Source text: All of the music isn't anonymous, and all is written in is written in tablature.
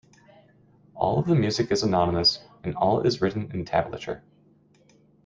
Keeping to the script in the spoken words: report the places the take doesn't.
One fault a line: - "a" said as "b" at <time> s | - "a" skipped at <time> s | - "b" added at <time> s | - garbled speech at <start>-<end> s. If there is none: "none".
- "isn't" said as "is" at 1.7 s
- "is written in" skipped at 3.6 s